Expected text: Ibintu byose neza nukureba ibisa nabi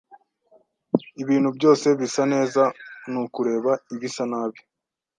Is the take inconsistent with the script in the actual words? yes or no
yes